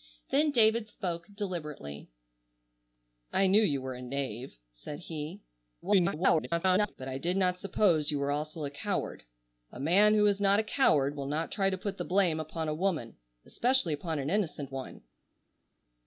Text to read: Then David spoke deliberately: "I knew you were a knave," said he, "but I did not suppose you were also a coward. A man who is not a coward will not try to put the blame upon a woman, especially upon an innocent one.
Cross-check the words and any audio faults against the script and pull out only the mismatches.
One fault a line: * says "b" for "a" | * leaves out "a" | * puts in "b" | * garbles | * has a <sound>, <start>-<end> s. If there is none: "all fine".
* garbles